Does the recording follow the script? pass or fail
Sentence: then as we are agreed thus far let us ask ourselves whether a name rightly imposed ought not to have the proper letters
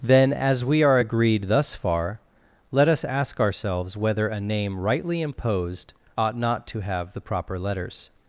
pass